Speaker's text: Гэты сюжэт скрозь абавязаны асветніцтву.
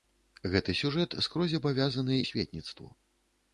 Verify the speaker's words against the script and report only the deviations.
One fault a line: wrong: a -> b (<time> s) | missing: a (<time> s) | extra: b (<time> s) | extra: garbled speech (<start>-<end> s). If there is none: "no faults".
no faults